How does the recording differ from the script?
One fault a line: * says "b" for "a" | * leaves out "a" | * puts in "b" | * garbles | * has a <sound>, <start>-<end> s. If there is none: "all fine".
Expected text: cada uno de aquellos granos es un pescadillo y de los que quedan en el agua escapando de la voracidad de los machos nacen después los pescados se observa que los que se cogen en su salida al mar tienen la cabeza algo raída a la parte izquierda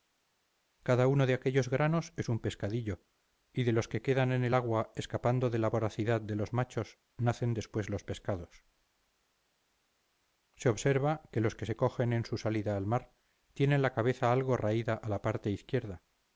all fine